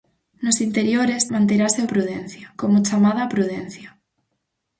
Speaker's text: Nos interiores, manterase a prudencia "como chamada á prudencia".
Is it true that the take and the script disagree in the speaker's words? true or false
false